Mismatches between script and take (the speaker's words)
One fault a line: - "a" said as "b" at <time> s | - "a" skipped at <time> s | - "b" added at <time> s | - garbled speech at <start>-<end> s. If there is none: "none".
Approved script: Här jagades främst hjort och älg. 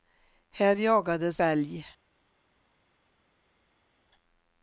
- "främst hjort och" skipped at 1.4 s